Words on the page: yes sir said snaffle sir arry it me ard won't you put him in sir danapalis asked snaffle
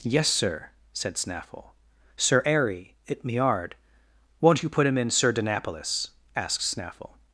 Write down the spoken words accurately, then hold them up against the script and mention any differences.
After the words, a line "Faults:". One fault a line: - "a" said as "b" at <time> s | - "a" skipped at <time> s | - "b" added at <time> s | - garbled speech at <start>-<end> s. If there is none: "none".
yes sir said snaffle sir arry it me ard won't you put him in sir danapalis asked snaffle
Faults:
none